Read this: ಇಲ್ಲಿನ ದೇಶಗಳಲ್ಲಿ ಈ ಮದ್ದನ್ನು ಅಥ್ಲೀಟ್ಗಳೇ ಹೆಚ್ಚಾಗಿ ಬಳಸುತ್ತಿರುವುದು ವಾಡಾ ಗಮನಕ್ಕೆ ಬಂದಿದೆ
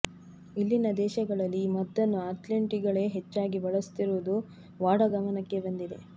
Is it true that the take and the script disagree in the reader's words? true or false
false